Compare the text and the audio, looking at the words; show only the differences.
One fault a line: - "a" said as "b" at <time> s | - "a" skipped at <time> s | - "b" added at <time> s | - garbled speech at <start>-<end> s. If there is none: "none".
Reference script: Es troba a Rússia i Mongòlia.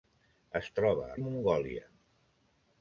- "Rússia" skipped at 1.2 s